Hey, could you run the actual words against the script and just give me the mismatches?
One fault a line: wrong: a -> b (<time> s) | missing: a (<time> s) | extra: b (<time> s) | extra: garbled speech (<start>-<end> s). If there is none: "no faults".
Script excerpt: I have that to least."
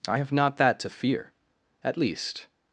extra: not (0.3 s)
extra: fear at (0.9 s)